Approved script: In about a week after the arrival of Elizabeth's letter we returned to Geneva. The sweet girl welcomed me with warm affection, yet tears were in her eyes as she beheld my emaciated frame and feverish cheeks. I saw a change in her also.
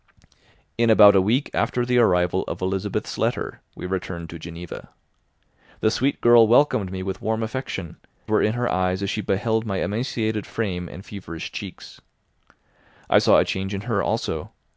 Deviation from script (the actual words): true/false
true